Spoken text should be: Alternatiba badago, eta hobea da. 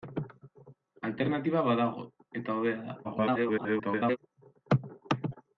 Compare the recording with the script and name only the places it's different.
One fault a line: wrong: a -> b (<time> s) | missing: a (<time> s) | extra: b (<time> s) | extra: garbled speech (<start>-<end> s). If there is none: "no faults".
extra: garbled speech (3.0-4.2 s)